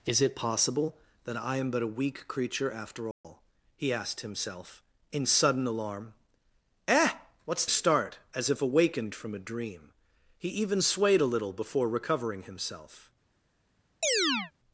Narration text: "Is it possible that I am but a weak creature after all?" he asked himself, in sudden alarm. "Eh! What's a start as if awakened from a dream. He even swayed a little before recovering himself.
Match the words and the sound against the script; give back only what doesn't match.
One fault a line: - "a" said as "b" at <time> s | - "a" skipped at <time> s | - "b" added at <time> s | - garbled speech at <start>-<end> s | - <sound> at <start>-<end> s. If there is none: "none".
- dropout at 3.1-3.2 s
- chirp at 14.0-14.5 s